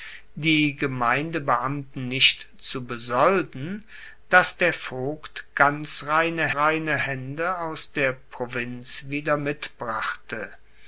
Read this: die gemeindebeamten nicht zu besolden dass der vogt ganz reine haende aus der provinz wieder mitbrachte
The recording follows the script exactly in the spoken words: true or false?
false